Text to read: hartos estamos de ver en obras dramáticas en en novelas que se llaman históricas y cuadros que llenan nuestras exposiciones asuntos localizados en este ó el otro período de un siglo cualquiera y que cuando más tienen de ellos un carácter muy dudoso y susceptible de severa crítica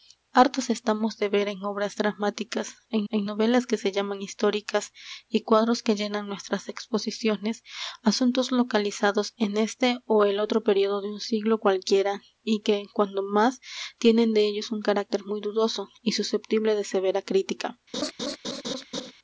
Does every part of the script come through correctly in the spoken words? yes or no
yes